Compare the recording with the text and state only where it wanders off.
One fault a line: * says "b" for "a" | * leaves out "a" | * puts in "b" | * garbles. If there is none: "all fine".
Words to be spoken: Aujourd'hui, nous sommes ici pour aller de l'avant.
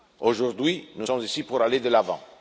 all fine